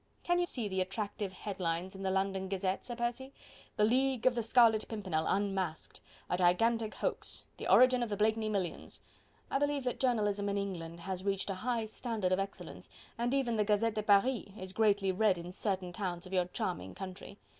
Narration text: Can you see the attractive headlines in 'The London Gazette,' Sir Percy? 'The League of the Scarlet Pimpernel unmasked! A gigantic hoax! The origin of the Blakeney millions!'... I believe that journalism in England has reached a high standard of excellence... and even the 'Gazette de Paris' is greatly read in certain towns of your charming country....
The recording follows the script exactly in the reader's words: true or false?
true